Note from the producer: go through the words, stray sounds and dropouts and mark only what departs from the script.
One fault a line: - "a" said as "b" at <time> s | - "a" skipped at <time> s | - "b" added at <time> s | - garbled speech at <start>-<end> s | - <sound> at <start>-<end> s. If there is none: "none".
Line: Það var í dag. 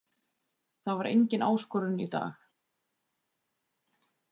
- "engin áskorun" added at 1.1 s